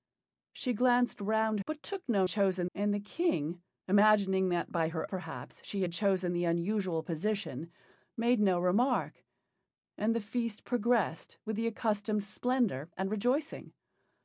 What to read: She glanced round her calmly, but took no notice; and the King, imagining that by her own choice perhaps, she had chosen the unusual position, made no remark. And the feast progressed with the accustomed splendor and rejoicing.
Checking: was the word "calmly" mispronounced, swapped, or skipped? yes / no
yes